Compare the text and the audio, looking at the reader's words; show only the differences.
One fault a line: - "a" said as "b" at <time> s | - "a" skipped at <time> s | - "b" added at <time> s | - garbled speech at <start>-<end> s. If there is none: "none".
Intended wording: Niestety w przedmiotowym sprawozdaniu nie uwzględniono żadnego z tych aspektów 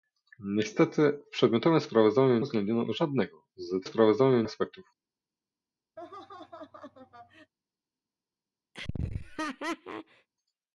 - "nie" skipped at 2.5 s
- "tych" said as "sprawozdaniu" at 3.8 s